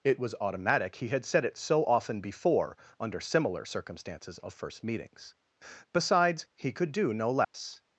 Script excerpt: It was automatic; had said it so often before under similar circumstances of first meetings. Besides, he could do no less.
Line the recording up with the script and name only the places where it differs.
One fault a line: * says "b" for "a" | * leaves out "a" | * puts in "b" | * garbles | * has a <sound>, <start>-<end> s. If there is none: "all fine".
* puts in "he"
* has a dropout, 7.4-7.5 s